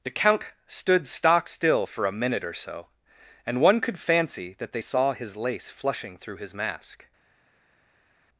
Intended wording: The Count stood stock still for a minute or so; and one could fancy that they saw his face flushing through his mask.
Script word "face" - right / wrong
wrong